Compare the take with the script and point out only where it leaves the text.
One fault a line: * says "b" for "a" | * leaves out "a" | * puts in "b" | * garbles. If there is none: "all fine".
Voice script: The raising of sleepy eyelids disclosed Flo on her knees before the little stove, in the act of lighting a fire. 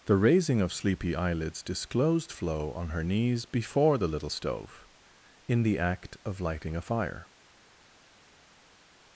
all fine